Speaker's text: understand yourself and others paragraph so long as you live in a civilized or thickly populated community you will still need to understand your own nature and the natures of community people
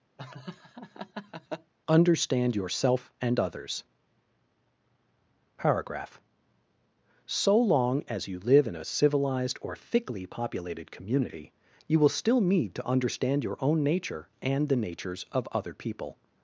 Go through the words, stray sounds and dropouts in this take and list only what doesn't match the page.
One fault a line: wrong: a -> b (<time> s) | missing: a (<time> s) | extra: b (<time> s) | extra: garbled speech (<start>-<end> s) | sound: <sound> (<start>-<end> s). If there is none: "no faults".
sound: laugh (0.2-1.7 s)
wrong: community -> other (15.5 s)